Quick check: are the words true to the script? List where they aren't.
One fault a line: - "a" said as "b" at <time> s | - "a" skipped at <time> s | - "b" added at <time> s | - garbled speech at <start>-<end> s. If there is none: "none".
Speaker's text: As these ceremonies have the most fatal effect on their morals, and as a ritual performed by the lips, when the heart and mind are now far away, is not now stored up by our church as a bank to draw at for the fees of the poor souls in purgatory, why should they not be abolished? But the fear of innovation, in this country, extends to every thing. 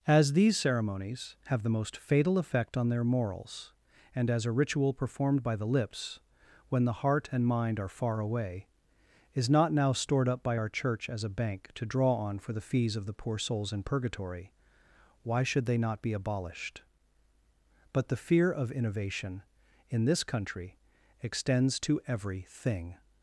- "now" skipped at 7.9 s
- "at" said as "on" at 12.1 s